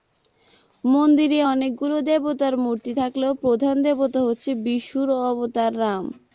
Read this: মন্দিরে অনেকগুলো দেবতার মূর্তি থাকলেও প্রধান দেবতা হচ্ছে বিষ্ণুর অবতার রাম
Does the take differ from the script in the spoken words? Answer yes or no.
no